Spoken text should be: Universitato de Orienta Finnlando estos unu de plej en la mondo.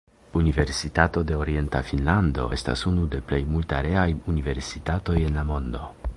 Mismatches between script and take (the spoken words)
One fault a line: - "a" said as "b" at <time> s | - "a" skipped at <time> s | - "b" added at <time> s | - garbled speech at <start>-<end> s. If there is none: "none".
- "estos" said as "estas" at 2.6 s
- "multareaj universitatoj" added at 3.6 s